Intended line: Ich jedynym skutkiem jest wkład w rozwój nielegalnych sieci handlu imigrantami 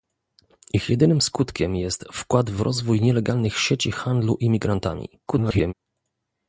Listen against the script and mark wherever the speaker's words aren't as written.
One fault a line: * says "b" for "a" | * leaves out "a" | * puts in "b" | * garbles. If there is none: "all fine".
* garbles